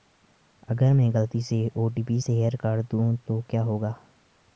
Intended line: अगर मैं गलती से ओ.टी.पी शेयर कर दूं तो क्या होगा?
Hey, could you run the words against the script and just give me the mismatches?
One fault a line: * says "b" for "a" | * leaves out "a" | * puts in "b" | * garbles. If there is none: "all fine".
all fine